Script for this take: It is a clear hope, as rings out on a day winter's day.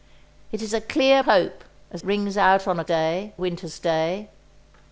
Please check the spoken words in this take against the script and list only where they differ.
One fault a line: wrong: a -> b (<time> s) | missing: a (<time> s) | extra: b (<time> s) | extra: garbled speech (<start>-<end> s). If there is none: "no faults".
no faults